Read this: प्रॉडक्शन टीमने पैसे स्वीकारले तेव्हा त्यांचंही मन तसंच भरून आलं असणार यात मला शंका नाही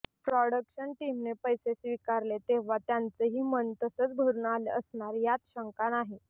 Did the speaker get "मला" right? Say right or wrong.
wrong